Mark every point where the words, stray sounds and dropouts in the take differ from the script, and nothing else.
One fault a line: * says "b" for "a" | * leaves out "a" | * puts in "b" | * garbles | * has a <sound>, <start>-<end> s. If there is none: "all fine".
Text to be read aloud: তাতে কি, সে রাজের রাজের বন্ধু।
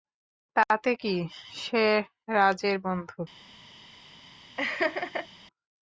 * leaves out "রাজের"
* has a laugh, 4.6-5.3 s